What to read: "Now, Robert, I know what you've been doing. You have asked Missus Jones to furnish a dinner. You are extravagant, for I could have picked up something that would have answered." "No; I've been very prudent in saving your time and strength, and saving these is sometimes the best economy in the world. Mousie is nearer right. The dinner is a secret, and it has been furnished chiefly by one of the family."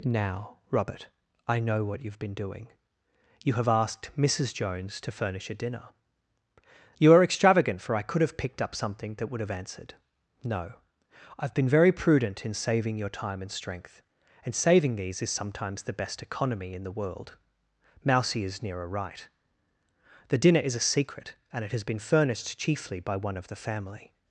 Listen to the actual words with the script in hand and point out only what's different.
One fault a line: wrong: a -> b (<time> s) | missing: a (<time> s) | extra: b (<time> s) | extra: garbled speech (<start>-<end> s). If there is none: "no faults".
no faults